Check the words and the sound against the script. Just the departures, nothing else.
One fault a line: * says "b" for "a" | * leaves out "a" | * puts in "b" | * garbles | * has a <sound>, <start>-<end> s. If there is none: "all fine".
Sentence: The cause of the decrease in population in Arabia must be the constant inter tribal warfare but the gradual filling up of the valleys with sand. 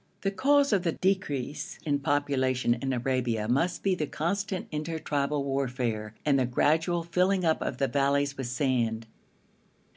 * says "and" for "but"